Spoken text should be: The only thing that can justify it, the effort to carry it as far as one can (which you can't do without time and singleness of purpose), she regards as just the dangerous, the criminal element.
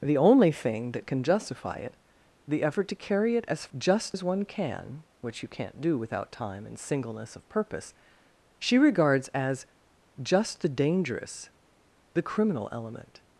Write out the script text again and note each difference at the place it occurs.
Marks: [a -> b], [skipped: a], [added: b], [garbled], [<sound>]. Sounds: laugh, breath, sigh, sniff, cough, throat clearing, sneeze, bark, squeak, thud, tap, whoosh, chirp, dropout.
The only thing that can justify it, the effort to carry it as [far -> just] as one can (which you can't do without time and singleness of purpose), she regards as just the dangerous, the criminal element.